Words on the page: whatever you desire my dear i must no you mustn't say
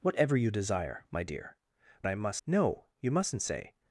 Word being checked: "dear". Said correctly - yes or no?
yes